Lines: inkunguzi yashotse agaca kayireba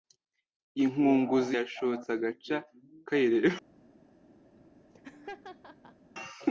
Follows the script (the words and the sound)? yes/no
no